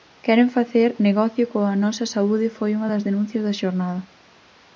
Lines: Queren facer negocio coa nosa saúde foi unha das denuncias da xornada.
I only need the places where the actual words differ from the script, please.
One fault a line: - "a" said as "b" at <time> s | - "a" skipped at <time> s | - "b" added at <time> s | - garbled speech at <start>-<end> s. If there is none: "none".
none